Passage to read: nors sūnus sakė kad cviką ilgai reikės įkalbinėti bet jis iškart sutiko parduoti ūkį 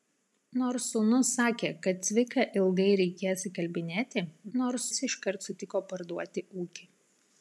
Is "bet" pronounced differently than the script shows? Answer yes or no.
yes